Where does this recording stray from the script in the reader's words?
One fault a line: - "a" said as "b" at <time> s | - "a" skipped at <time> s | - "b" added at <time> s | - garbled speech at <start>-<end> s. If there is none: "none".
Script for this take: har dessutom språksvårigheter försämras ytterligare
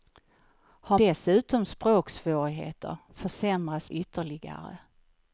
none